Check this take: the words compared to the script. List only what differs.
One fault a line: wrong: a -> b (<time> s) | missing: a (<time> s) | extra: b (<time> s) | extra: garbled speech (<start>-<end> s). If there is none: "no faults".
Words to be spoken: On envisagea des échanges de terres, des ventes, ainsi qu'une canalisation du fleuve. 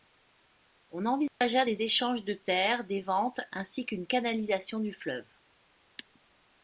no faults